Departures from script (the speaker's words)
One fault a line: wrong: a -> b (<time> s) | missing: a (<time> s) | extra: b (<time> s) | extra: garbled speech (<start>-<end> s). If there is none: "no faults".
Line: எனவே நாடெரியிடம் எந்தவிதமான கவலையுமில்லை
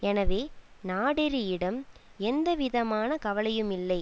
no faults